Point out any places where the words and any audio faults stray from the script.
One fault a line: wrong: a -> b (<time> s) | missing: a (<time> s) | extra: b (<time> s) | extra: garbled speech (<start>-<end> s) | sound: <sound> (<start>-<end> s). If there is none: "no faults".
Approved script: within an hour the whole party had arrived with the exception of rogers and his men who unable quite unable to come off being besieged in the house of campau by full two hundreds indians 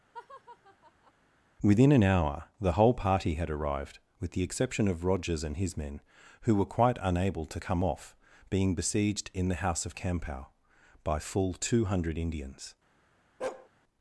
sound: laugh (0.1-1.1 s)
wrong: unable -> were (6.5 s)
wrong: hundreds -> hundred (11.8 s)
sound: bark (13.4-13.7 s)